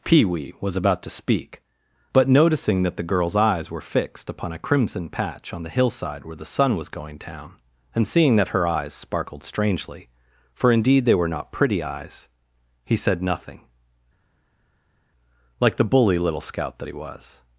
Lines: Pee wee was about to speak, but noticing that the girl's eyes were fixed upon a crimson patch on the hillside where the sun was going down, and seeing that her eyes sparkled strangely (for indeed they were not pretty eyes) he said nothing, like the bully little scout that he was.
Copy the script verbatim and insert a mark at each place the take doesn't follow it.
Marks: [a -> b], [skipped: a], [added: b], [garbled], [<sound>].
Pee wee was about to speak, but noticing that the girl's eyes were fixed upon a crimson patch on the hillside where the sun was going down, and seeing that her eyes sparkled strangely (for indeed they were not pretty eyes) he said nothing, like the bully little scout that he was.